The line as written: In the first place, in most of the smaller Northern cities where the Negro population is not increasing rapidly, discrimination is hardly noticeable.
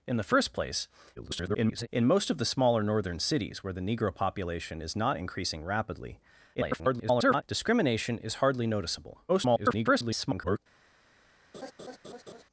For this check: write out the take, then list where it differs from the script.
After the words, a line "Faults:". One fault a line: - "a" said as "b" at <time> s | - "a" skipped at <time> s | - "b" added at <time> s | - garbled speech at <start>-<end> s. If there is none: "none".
In the first place, [garbled] in most of the smaller Northern cities where the Negro population is not increasing rapidly, [garbled] discrimination is hardly noticeable. [garbled]
Faults:
- garbled speech at 1.2-1.9 s
- garbled speech at 6.5-7.4 s
- garbled speech at 9.3-10.6 s